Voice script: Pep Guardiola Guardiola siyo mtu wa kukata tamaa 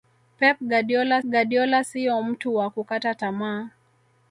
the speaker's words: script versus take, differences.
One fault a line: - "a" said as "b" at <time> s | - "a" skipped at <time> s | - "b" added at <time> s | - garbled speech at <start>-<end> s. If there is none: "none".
none